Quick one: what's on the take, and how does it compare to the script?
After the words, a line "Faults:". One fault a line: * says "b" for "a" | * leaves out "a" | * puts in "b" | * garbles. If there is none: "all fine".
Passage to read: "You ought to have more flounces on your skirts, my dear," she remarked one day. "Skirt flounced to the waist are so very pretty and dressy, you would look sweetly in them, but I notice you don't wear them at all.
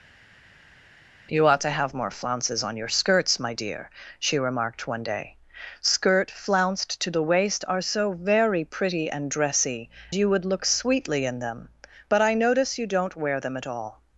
"You ought to have more flounces on your skirts, my dear," she remarked one day. "Skirt flounced to the waist are so very pretty and dressy, you would look sweetly in them, but I notice you don't wear them at all.
Faults:
all fine